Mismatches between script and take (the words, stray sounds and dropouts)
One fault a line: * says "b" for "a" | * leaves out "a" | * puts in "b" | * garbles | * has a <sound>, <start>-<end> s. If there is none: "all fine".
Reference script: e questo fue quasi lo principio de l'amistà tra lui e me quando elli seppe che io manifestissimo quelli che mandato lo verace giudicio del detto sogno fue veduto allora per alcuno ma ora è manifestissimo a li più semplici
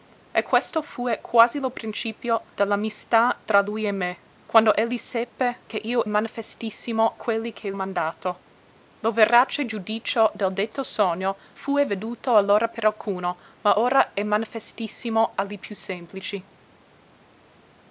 all fine